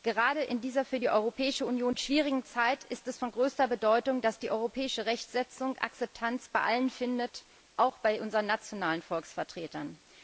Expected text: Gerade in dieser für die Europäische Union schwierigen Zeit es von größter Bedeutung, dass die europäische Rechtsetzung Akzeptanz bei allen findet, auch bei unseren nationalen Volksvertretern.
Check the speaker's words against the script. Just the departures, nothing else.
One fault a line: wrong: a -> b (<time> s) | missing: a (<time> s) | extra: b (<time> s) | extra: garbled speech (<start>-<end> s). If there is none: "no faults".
extra: ist (2.8 s)